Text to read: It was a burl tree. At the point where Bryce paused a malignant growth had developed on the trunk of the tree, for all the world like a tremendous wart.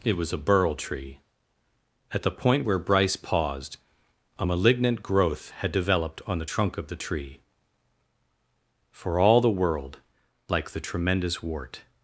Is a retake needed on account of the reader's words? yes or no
yes